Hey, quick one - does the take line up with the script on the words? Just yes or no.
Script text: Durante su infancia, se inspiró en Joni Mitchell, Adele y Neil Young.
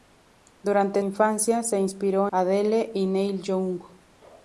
no